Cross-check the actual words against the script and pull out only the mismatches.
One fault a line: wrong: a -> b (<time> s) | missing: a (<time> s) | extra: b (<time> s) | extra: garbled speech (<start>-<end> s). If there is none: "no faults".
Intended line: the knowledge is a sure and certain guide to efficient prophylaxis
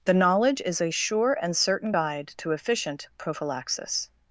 no faults